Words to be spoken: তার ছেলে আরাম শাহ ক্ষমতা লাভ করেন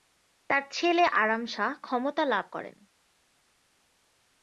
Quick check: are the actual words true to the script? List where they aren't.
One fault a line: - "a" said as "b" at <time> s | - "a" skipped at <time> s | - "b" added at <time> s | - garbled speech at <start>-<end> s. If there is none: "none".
none